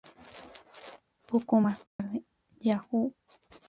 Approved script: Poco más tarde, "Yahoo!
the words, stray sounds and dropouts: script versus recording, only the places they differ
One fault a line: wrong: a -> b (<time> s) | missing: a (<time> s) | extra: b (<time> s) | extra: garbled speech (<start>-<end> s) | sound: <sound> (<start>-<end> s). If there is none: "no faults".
sound: dropout (1.9-2.0 s)